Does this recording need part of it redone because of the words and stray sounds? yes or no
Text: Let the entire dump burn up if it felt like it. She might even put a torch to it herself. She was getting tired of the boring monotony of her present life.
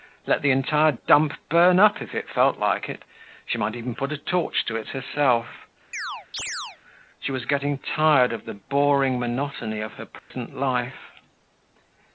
yes